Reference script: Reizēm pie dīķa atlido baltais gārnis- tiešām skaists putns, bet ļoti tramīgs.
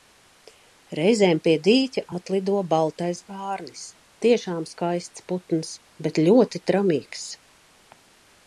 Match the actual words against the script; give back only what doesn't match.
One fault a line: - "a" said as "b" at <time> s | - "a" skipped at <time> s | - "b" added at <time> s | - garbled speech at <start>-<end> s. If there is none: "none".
none